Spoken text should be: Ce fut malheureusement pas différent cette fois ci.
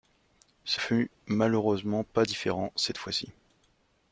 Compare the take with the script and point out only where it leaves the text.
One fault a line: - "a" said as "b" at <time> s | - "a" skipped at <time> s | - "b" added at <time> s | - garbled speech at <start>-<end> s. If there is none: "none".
none